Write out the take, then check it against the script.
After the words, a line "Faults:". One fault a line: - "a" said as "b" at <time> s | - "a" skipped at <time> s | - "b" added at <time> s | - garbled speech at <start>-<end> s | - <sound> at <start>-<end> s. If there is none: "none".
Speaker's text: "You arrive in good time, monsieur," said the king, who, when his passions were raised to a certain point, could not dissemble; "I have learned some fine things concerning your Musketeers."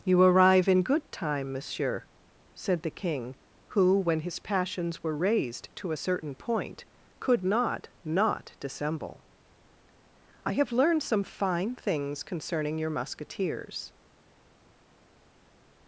"You arrive in good time, monsieur," said the king, who, when his passions were raised to a certain point, could not not dissemble; "I have learned some fine things concerning your Musketeers."
Faults:
- "not" added at 8.0 s